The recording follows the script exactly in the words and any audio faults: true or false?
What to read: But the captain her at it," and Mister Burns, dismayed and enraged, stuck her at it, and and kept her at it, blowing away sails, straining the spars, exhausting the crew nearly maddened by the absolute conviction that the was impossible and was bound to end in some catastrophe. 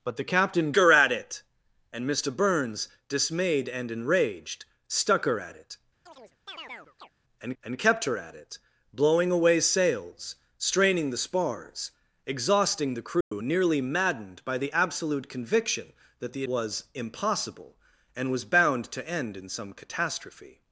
false